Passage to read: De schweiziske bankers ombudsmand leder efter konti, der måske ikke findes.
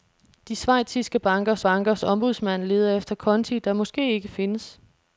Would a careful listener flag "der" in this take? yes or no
no